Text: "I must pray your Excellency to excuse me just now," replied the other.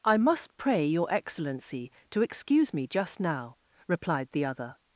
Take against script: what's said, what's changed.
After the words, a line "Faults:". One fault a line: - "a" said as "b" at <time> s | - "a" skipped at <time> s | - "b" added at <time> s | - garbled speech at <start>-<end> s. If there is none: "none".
"I must pray your Excellency to excuse me just now," replied the other.
Faults:
none